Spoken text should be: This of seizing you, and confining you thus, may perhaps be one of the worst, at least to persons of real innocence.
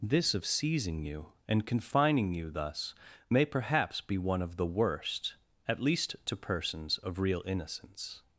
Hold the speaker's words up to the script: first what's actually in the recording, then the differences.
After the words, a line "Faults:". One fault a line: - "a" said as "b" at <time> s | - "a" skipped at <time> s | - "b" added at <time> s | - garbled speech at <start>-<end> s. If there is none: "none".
This of seizing you, and confining you thus, may perhaps be one of the worst, at least to persons of real innocence.
Faults:
none